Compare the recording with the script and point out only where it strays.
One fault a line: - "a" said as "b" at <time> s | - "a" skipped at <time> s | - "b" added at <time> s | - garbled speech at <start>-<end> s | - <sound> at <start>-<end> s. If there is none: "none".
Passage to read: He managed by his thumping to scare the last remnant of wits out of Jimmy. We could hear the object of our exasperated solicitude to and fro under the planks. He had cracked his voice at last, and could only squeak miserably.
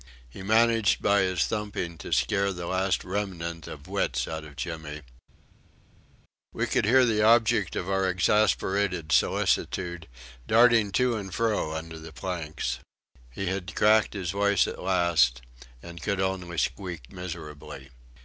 - "darting" added at 10.5 s